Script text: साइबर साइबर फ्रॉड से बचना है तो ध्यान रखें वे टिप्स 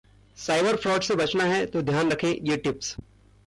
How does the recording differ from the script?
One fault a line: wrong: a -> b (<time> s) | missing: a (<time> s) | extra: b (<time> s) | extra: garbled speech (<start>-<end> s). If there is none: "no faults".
missing: साइबर (0.8 s)
wrong: वे -> ये (2.3 s)